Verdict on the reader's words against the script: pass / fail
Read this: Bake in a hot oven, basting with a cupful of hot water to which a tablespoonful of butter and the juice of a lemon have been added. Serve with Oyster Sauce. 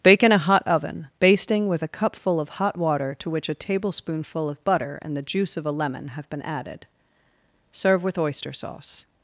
pass